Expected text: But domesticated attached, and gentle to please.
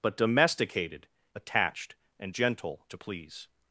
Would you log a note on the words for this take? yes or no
no